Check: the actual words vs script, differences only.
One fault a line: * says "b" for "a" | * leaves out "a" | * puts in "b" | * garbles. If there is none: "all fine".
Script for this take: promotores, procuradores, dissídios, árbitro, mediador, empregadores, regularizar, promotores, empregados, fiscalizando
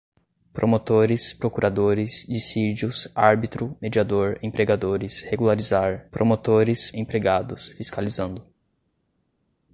all fine